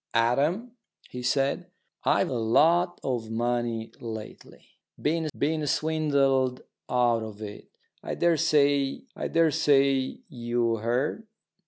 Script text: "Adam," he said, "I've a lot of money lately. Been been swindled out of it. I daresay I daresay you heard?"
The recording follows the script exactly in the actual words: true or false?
true